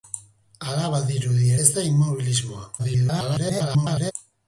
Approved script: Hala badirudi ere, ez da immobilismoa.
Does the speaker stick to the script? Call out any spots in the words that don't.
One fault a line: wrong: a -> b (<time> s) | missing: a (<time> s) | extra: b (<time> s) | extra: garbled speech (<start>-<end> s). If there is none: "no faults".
missing: ere (1.5 s)
extra: garbled speech (2.8-4.1 s)